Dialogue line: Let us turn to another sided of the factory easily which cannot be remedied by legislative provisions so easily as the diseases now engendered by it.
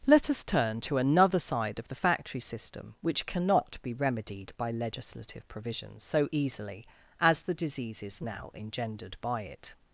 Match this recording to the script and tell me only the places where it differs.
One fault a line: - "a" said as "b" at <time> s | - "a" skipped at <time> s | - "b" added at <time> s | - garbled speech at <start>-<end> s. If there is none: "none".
- "sided" said as "side" at 1.4 s
- "easily" said as "system" at 2.4 s